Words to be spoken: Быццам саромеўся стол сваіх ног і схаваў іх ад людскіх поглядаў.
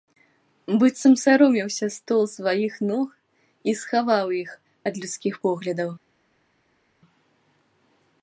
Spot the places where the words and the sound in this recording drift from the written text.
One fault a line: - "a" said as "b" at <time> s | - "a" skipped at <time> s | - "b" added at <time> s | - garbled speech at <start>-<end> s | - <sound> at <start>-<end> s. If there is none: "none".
none